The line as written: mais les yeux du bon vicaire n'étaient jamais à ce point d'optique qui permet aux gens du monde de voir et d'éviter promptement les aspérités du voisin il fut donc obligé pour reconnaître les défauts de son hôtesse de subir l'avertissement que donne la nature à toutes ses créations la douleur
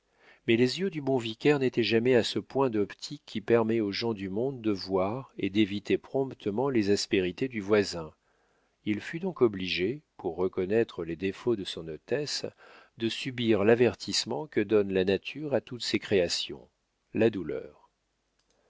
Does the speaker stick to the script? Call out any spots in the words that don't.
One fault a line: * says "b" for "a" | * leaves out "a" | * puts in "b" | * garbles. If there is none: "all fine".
all fine